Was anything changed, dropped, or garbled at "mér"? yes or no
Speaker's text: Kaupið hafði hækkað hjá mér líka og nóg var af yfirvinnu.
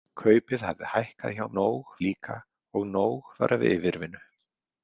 yes